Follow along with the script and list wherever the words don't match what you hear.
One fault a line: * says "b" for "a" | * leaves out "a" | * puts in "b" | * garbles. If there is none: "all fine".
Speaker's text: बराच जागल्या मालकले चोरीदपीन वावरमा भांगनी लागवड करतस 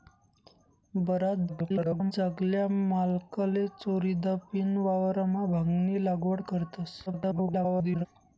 * garbles
* garbles